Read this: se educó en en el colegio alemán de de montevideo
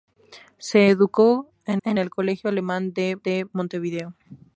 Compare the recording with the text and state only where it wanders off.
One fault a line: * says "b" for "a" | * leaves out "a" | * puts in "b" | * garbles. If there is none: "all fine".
all fine